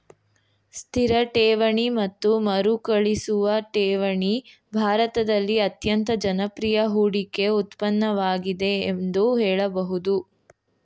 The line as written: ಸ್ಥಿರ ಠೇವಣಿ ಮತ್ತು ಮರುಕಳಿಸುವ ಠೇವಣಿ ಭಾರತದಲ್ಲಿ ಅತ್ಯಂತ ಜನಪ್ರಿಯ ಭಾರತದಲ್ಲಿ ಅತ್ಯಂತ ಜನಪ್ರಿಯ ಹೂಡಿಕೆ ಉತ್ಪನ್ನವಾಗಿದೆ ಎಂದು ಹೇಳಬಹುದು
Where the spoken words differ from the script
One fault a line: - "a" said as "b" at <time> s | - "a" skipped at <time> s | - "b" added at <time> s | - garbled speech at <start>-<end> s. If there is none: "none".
- "ಭಾರತದಲ್ಲಿ ಅತ್ಯಂತ ಜನಪ್ರಿಯ" skipped at 6.9 s